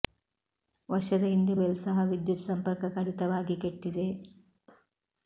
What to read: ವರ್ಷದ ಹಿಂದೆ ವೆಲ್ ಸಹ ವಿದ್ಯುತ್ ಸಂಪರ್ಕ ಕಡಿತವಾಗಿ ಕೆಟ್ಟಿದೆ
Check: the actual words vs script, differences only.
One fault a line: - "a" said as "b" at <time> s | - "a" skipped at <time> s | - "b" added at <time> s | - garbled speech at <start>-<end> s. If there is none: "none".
none